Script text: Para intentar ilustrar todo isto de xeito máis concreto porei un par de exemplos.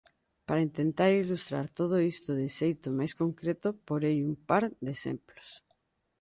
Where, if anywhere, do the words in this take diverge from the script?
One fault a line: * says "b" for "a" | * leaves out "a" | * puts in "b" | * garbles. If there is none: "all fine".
all fine